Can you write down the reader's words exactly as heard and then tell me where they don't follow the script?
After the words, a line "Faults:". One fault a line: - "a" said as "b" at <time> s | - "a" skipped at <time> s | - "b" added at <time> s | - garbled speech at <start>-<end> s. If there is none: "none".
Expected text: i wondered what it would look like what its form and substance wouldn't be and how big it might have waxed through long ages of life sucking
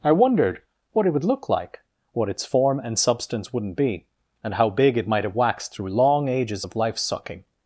i wondered what it would look like what its form and substance wouldn't be and how big it might have waxed through long ages of life sucking
Faults:
none